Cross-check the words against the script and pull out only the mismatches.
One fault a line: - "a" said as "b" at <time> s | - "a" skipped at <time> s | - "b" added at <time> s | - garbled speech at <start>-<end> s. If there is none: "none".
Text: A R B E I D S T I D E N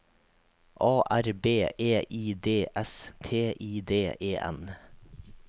none